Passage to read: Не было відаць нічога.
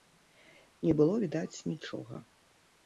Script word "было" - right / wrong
right